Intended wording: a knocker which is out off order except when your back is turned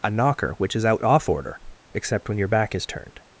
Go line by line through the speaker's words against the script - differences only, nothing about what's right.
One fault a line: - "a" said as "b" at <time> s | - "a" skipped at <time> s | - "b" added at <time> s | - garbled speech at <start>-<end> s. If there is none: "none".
none